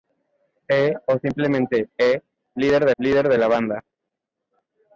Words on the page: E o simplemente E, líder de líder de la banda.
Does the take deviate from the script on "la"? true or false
false